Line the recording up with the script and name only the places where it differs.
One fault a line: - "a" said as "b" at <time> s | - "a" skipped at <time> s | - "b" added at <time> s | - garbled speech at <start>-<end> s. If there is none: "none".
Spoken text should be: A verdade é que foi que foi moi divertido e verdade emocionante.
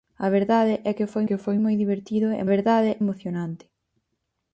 none